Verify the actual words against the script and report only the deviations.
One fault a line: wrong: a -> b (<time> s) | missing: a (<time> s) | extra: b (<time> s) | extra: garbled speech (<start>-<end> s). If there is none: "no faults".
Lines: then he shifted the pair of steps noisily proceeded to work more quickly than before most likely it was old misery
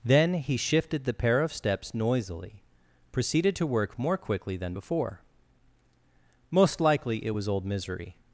no faults